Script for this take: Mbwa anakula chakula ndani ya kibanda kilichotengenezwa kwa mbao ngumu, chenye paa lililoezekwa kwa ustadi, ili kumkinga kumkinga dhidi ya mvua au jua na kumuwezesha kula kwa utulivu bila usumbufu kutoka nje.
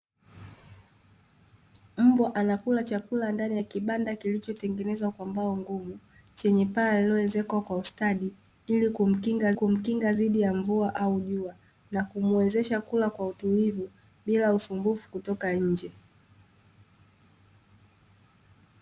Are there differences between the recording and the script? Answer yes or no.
no